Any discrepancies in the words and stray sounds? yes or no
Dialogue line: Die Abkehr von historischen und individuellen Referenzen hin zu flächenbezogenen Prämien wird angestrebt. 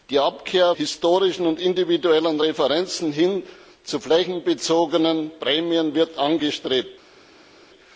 yes